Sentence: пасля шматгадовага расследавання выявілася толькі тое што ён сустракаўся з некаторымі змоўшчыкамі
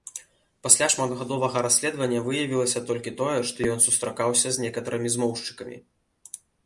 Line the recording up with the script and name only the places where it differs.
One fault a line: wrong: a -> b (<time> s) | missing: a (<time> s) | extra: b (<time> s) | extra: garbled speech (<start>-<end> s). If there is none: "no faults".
no faults